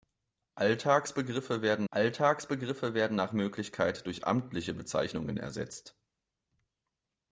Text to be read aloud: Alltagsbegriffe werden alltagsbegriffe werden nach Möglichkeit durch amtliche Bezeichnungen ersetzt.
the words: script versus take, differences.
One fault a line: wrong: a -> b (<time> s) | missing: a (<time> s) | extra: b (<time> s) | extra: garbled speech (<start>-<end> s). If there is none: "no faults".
no faults